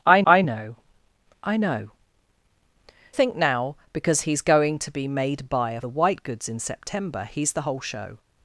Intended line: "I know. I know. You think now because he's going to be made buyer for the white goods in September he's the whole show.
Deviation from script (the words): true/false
true